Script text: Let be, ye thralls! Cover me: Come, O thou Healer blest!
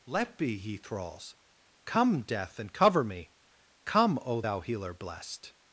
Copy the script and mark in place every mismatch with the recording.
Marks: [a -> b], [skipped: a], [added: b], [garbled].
Let be, ye thralls! [added: Come Death and] Cover me: Come, O thou Healer blest!